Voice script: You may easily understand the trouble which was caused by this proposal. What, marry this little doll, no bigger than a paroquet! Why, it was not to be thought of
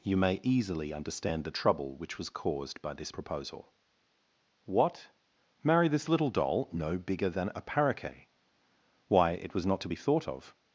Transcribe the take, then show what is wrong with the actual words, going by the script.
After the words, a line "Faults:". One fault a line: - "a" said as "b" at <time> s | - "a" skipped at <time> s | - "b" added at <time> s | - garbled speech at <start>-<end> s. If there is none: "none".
You may easily understand the trouble which was caused by this proposal. What, marry this little doll, no bigger than a paroquet! Why, it was not to be thought of
Faults:
none